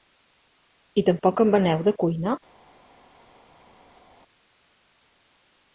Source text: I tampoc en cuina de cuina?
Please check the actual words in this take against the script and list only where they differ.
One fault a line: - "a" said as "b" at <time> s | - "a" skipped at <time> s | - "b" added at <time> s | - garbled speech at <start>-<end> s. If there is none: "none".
- "cuina" said as "veneu" at 1.6 s